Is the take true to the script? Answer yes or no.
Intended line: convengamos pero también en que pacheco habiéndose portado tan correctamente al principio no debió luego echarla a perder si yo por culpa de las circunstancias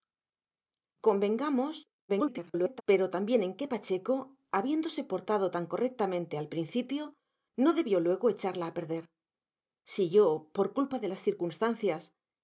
no